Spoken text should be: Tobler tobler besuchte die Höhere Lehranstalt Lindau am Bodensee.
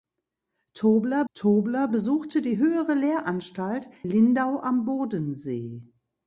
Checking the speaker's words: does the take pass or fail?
pass